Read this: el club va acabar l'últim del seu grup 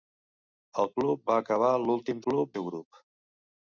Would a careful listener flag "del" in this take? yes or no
yes